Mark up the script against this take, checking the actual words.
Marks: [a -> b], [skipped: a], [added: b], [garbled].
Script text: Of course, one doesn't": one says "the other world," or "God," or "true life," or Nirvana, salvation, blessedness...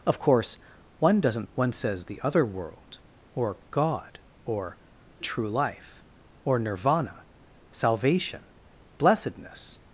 Of course, one doesn't": one says "the other world," or "God," or "true life," or Nirvana, salvation, blessedness...